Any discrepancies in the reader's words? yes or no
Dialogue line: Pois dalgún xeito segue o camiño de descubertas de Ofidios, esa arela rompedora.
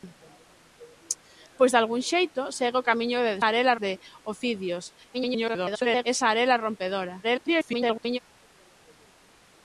yes